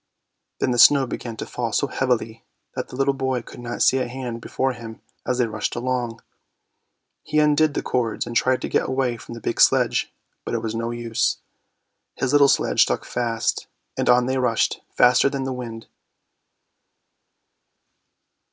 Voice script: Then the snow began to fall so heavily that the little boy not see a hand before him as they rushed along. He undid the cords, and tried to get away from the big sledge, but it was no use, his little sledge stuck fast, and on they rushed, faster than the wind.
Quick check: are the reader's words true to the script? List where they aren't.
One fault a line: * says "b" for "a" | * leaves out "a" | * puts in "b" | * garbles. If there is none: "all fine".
* puts in "could"